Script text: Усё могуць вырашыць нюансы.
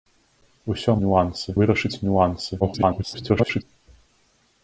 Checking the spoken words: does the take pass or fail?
fail